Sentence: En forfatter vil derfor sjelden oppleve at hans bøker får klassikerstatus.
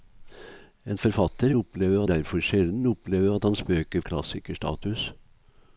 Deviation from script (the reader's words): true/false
true